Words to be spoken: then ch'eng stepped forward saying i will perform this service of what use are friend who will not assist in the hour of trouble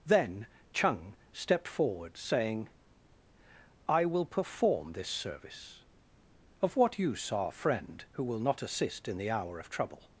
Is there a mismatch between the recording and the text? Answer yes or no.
no